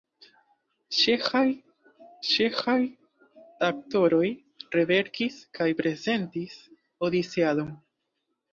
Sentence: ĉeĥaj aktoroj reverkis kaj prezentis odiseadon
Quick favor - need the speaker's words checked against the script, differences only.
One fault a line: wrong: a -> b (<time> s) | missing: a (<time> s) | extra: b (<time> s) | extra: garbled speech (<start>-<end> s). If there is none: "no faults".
extra: ĉeĥaj (2.3 s)